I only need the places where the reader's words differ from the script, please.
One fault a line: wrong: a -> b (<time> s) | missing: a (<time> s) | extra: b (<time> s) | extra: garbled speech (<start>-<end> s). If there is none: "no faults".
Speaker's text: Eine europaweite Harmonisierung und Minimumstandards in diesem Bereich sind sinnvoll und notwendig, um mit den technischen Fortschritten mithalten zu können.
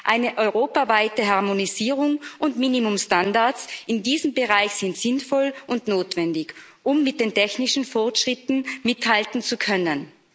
no faults